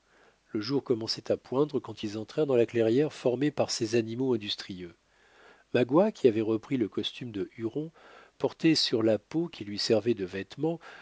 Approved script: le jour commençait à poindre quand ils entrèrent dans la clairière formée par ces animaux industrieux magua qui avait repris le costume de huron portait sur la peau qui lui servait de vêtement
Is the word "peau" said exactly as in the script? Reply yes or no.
yes